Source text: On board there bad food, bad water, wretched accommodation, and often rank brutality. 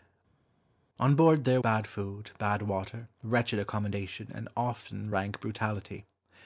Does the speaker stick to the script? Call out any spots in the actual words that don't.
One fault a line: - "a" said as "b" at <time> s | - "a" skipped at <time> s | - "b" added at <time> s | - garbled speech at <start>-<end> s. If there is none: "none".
none